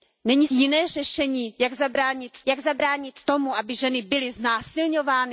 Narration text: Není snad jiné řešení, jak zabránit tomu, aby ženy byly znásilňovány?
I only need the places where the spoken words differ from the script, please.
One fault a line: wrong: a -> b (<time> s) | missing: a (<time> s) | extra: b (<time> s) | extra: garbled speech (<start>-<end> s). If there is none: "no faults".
missing: snad (0.5 s)
extra: jak zabránit (2.5 s)